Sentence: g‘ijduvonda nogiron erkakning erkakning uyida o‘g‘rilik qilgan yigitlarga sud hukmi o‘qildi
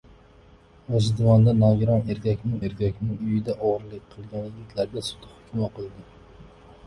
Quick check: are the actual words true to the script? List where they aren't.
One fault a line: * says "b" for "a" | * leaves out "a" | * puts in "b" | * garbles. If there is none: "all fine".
all fine